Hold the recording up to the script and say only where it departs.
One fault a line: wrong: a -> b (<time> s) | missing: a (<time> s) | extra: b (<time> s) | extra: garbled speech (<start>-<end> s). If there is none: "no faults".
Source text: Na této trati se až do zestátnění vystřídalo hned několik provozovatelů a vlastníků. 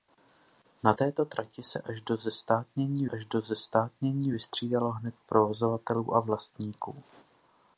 extra: až do zestátnění (3.0 s)
missing: několik (5.1 s)